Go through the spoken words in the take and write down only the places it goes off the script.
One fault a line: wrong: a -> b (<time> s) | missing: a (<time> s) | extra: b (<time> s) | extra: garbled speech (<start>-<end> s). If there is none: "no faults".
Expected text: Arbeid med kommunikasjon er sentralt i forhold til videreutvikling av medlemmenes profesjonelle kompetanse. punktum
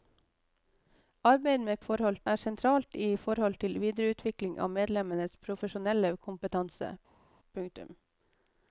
wrong: kommunikasjon -> forhold (1.9 s)